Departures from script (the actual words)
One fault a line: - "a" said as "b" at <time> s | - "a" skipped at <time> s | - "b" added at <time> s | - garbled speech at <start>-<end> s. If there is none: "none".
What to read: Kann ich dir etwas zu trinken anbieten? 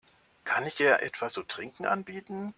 none